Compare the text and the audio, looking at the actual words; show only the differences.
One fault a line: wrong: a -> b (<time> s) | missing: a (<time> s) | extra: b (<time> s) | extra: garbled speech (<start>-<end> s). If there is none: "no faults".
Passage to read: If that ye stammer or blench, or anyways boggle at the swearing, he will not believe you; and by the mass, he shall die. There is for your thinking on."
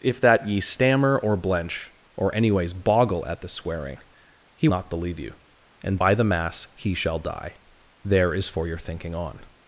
missing: will (4.7 s)